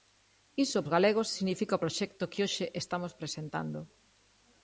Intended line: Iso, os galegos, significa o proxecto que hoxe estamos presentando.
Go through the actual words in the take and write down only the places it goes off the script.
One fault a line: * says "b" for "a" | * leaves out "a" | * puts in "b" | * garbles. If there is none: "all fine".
all fine